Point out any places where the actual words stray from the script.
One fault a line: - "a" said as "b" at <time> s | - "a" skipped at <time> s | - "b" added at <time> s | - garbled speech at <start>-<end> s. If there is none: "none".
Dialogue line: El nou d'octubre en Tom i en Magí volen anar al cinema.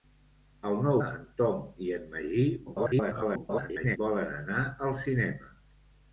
- "d'octubre" skipped at 0.9 s
- garbled speech at 2.7-4.0 s